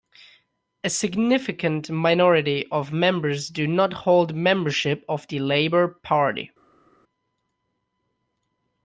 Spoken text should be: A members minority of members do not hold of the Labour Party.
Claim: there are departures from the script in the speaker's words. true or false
true